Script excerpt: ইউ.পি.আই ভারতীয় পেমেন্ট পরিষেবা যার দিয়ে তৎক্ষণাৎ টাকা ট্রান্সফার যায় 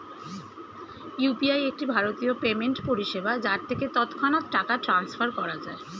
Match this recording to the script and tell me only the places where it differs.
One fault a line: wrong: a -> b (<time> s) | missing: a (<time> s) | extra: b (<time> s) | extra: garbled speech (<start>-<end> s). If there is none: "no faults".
extra: একটি (1.7 s)
wrong: দিয়ে -> থেকে (3.7 s)
extra: করা (5.3 s)